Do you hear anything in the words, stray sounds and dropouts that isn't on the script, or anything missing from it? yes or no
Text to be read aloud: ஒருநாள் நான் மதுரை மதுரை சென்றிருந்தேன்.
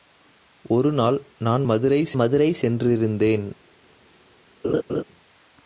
yes